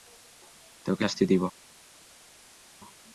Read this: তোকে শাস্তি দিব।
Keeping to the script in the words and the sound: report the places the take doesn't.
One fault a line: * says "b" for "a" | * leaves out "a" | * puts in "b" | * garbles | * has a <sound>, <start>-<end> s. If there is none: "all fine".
all fine